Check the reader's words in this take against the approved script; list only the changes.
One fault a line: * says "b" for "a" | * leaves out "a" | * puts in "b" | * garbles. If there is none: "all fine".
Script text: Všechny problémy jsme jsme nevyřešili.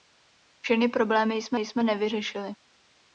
all fine